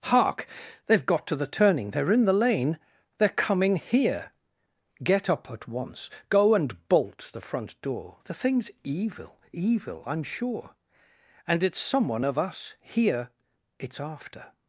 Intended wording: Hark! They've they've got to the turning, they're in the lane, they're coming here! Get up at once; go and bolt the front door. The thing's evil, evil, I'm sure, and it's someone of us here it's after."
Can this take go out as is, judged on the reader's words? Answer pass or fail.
fail